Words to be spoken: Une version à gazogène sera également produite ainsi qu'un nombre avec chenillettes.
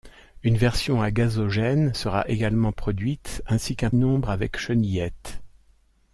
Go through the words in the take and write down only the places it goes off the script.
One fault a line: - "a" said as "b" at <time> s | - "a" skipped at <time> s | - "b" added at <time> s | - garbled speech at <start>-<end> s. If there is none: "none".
none